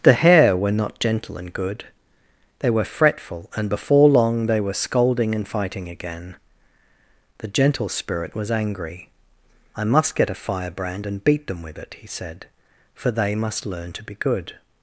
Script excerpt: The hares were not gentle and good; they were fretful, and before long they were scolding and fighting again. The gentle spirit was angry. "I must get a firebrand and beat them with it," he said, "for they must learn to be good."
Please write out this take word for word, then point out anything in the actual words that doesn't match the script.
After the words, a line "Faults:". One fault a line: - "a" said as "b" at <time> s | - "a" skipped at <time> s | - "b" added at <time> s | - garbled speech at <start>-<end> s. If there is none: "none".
The hare were not gentle and good; they were fretful, and before long they were scolding and fighting again. The gentle spirit was angry. "I must get a firebrand and beat them with it," he said, "for they must learn to be good."
Faults:
- "hares" said as "hare" at 0.1 s